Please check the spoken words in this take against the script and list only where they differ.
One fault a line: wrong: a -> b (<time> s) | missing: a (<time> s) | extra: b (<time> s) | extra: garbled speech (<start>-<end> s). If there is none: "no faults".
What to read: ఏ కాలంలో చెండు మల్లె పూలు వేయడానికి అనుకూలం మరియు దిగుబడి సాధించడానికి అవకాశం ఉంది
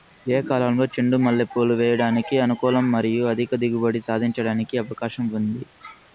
extra: అధిక (3.3 s)